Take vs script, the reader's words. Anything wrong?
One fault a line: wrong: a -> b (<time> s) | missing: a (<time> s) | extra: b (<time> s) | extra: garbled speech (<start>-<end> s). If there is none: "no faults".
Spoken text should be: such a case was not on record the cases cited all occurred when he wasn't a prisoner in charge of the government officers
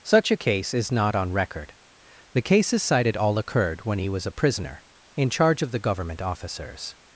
wrong: was -> is (0.7 s)
wrong: wasn't -> was (4.1 s)